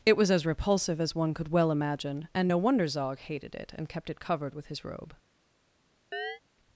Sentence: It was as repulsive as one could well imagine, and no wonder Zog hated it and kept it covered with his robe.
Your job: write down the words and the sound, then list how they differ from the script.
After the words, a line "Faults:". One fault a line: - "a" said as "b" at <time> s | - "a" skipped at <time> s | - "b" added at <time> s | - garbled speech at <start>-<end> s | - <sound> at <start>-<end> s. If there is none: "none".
It was as repulsive as one could well imagine, and no wonder Zog hated it and kept it covered with his robe.
Faults:
- chirp at 6.1-6.4 s